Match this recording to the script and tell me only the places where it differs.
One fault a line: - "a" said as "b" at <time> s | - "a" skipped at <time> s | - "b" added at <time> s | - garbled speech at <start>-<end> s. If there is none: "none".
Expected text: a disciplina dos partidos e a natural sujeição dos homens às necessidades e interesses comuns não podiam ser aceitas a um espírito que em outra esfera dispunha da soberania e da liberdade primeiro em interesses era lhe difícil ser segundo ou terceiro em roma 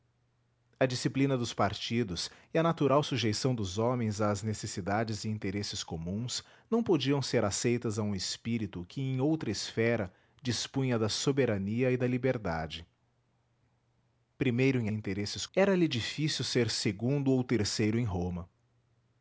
none